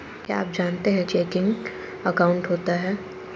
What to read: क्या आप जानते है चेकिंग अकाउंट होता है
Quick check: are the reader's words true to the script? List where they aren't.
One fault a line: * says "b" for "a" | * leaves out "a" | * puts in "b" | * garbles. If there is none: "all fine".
all fine